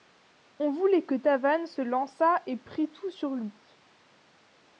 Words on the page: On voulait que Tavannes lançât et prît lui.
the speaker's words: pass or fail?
fail